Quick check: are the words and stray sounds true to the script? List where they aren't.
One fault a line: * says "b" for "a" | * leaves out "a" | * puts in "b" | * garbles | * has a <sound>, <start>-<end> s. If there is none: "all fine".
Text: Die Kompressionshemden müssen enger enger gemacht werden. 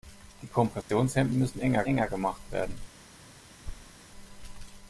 * has a dropout, 0.8-0.9 s
* has a thud, 3.6-4.0 s